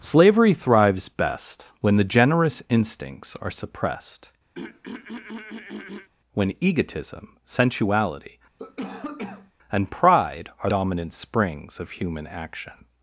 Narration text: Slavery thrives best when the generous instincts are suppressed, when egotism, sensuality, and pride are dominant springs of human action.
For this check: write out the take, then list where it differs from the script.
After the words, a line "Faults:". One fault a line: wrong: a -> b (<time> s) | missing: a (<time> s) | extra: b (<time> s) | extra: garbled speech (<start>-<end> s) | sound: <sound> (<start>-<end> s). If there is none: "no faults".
Slavery thrives best when the generous instincts are suppressed, when egotism, sensuality, and pride are dominant springs of human action.
Faults:
sound: throat clearing (4.5-6.1 s)
sound: cough (8.6-9.5 s)